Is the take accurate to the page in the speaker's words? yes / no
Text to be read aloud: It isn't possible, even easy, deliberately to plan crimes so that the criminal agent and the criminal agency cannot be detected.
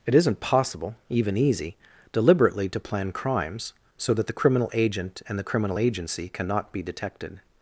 yes